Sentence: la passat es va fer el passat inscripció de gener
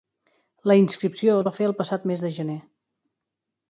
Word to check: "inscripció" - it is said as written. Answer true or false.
false